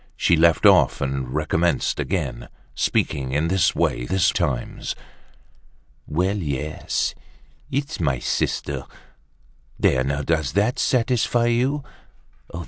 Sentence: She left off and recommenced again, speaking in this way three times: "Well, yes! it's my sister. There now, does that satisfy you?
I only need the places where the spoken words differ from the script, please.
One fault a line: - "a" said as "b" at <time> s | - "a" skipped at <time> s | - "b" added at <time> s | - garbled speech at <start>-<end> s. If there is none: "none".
- "three" said as "this" at 4.1 s